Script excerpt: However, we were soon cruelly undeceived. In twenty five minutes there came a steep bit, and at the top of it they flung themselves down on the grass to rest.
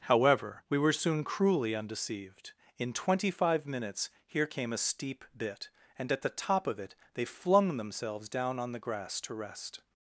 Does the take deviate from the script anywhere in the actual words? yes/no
yes